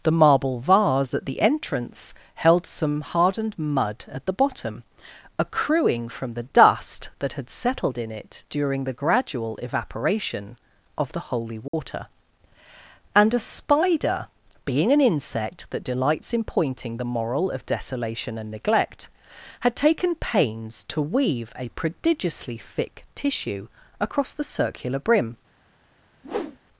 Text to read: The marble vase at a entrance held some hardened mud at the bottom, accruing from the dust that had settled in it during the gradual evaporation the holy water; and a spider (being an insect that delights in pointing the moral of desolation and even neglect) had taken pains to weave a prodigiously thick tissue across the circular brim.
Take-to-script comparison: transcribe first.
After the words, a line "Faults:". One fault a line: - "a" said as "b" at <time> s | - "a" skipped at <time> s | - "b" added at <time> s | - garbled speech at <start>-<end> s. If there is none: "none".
The marble vase at the entrance held some hardened mud at the bottom, accruing from the dust that had settled in it during the gradual evaporation of the holy water; and a spider (being an insect that delights in pointing the moral of desolation and neglect) had taken pains to weave a prodigiously thick tissue across the circular brim.
Faults:
- "a" said as "the" at 1.2 s
- "of" added at 11.0 s
- "even" skipped at 18.5 s